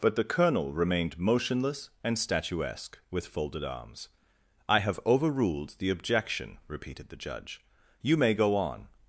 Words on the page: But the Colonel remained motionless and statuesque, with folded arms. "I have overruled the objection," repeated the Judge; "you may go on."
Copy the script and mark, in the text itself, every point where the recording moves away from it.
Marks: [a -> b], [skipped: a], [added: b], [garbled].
But the Colonel remained motionless and statuesque, with folded arms. "I have overruled the objection," repeated the Judge; "you may go on."